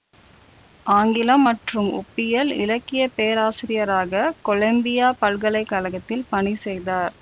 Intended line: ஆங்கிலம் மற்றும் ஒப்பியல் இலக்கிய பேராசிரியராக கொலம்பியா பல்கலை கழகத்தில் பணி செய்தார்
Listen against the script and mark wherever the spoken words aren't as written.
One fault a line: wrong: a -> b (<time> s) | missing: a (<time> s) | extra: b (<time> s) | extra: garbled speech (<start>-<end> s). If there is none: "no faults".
no faults